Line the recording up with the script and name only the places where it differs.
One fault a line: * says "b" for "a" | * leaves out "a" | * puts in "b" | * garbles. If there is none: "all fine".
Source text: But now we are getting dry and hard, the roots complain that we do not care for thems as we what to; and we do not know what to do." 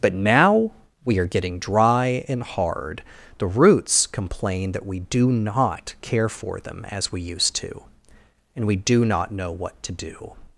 * says "them" for "thems"
* says "used" for "what"